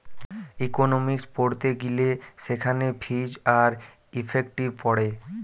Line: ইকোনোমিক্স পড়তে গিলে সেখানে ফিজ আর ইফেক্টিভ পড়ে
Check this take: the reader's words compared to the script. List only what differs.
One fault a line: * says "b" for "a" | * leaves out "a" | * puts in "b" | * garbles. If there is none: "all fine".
all fine